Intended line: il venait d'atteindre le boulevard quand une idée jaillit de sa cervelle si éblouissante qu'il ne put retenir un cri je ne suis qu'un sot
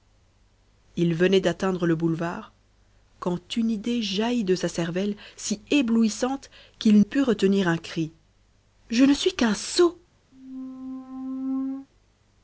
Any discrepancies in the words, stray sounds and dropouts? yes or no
yes